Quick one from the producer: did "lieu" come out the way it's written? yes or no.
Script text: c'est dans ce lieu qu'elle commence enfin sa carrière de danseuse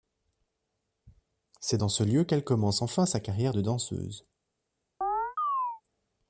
yes